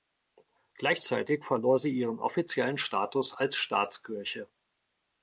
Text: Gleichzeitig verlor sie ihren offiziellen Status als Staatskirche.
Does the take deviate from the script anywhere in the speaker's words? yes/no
no